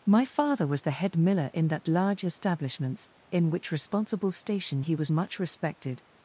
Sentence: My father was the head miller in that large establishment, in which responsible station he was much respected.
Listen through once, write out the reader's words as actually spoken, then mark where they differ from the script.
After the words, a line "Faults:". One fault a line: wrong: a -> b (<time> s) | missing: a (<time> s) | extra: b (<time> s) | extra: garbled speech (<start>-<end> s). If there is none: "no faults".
My father was the head miller in that large establishments, in which responsible station he was much respected.
Faults:
wrong: establishment -> establishments (2.2 s)